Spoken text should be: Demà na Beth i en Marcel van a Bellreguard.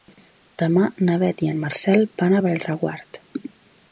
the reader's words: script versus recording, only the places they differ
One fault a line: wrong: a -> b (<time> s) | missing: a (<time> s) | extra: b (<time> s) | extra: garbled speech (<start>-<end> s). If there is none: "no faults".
no faults